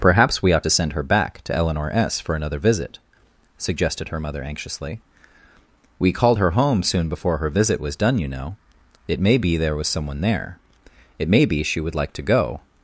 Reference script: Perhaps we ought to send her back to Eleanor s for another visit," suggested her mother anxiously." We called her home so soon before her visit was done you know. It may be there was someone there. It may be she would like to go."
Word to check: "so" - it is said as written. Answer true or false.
false